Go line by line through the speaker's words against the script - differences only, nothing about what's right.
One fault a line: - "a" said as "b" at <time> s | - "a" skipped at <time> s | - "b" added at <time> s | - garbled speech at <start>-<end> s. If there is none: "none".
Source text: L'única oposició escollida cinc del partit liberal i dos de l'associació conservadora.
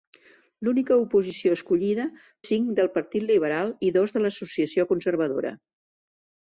none